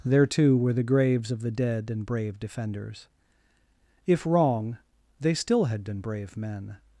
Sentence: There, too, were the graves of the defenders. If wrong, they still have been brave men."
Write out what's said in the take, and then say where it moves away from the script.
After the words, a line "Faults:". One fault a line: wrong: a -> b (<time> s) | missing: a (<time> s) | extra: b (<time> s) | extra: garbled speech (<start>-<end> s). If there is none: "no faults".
There, too, were the graves of the dead and brave defenders. If wrong, they still had been brave men."
Faults:
extra: dead and brave (1.5 s)
wrong: have -> had (5.7 s)